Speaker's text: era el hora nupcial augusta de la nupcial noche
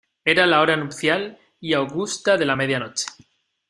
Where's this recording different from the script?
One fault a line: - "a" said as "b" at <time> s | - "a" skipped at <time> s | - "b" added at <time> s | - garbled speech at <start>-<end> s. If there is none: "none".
- "el" said as "la" at 0.5 s
- "y" added at 1.6 s
- "nupcial" said as "media" at 2.5 s